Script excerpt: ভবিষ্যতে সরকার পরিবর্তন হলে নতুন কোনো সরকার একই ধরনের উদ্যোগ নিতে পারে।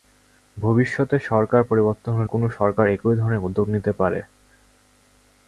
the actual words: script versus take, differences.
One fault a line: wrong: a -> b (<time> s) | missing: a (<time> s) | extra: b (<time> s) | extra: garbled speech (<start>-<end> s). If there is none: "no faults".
missing: নতুন (2.3 s)